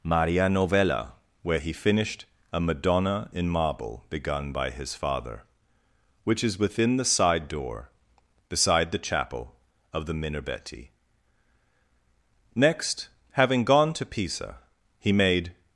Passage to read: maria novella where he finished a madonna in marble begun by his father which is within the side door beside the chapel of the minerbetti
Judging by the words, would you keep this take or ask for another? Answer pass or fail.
fail